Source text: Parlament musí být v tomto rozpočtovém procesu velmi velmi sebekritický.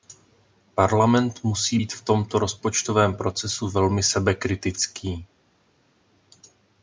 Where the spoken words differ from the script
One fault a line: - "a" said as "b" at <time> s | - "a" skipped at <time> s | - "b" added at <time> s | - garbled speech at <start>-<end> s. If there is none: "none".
- "velmi" skipped at 4.0 s